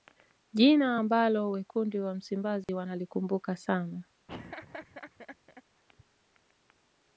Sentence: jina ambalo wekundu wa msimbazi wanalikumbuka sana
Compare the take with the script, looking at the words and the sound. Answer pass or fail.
fail